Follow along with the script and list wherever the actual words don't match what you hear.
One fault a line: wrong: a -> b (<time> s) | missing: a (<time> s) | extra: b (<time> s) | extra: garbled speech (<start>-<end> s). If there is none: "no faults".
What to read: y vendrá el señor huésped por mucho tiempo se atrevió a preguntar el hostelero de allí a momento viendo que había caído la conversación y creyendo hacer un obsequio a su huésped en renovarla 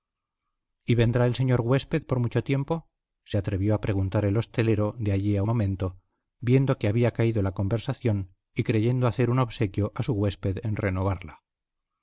no faults